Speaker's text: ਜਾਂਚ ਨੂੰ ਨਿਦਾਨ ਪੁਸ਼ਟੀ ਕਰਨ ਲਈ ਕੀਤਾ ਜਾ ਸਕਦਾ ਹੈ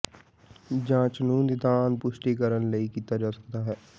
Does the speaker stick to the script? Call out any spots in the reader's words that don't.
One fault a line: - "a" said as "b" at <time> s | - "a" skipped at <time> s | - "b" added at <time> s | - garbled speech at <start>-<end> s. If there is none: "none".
none